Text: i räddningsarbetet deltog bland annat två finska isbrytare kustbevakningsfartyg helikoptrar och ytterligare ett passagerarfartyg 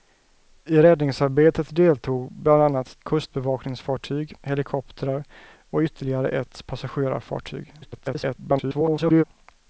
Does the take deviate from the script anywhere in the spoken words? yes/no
yes